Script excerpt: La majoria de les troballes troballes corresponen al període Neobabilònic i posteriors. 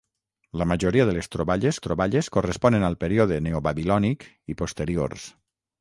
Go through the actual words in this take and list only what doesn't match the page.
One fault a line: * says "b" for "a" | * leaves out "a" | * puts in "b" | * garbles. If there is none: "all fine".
all fine